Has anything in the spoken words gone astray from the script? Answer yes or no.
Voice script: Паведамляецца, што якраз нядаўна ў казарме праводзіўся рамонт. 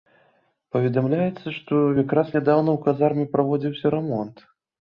no